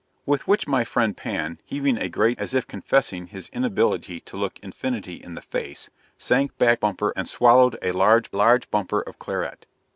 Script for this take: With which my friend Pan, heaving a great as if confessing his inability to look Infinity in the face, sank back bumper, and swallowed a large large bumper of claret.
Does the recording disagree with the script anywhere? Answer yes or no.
no